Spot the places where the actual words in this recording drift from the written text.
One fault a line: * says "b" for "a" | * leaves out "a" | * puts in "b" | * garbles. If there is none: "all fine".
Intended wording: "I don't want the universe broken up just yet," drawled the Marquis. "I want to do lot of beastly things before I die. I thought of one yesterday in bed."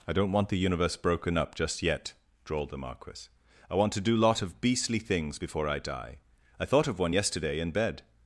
all fine